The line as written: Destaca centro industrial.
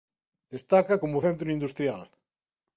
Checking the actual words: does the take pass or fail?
fail